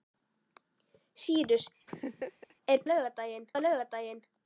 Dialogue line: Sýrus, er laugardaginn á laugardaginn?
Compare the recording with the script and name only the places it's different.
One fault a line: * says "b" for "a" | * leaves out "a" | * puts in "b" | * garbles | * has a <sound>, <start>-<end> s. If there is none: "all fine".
* has a laugh, 1.9-2.5 s